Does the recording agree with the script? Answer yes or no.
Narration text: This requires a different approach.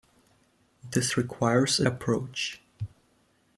no